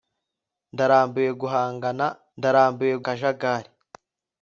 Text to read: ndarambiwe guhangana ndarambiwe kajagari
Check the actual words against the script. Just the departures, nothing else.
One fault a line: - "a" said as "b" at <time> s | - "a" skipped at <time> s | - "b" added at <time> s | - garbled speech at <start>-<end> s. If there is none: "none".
none